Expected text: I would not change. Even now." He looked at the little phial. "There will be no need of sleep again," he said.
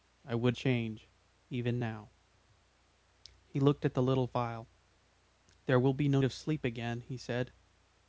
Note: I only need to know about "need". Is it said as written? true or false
false